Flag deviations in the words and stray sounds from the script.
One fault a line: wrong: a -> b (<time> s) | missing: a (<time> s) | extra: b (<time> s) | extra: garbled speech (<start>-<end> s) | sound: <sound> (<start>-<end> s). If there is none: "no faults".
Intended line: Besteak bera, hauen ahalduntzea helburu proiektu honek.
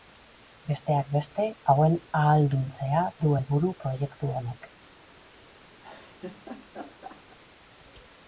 wrong: bera -> beste (1.1 s)
extra: du (3.3 s)
sound: laugh (5.8-7.4 s)